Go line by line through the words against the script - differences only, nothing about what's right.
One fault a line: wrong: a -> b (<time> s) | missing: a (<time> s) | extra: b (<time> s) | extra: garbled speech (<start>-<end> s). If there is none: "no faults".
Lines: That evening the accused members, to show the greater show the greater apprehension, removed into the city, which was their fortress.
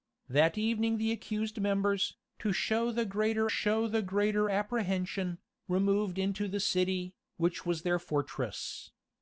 no faults